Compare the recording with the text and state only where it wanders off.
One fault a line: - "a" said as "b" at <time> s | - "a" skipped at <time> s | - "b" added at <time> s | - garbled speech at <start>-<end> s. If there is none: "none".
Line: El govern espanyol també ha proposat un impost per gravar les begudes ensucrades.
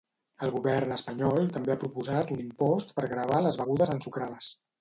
none